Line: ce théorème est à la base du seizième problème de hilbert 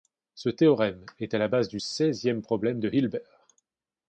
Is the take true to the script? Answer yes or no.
yes